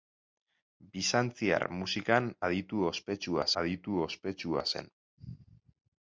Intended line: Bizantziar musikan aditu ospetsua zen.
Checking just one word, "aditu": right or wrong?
right